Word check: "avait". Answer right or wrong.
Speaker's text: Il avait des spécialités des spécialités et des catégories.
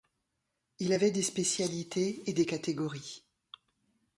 right